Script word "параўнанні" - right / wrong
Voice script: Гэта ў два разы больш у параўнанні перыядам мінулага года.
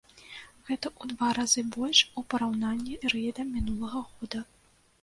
right